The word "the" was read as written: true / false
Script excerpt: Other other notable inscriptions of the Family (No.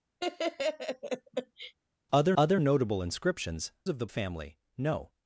true